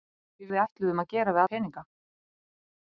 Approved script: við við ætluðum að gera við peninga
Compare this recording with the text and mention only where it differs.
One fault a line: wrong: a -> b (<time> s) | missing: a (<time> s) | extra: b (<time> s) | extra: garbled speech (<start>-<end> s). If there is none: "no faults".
no faults